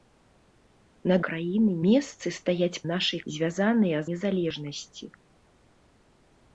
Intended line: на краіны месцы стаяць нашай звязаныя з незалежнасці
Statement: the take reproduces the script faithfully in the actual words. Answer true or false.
true